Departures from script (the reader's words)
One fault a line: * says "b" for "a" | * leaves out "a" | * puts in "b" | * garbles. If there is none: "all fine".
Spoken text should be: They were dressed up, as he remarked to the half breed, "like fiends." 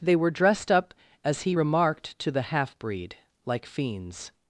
all fine